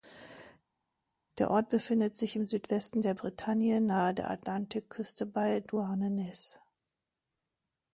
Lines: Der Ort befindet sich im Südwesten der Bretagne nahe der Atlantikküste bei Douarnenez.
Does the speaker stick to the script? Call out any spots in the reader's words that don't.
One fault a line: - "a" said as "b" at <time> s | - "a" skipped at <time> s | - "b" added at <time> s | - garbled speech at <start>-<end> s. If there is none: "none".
none